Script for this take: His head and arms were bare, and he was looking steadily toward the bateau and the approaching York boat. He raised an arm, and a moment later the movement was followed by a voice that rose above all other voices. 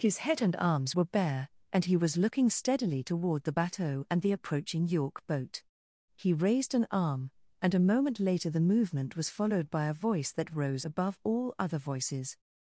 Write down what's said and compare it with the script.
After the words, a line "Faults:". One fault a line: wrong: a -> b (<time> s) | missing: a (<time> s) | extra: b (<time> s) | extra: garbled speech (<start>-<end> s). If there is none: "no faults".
His head and arms were bare, and he was looking steadily toward the bateau and the approaching York boat. He raised an arm, and a moment later the movement was followed by a voice that rose above all other voices.
Faults:
no faults